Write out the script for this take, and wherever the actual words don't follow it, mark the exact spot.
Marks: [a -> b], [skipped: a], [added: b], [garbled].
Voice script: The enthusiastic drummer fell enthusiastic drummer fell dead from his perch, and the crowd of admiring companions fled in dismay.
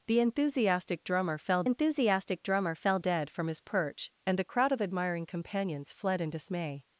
The enthusiastic drummer fell enthusiastic drummer fell dead from his perch, and the crowd of admiring companions fled in dismay.